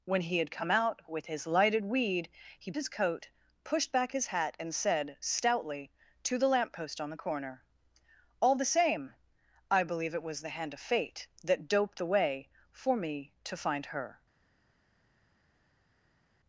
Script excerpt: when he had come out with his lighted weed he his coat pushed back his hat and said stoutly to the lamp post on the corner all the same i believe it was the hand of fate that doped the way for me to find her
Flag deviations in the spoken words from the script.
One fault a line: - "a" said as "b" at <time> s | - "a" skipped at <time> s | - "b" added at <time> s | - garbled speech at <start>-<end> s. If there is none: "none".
none